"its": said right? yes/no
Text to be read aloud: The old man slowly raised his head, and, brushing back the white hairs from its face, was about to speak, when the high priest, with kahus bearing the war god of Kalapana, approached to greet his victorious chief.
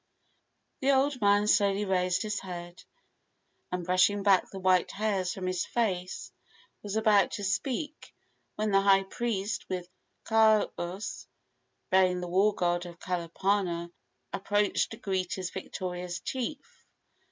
no